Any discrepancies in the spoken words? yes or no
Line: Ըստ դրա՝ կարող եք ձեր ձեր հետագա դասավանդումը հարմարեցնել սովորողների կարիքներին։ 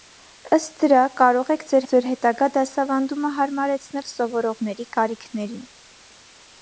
no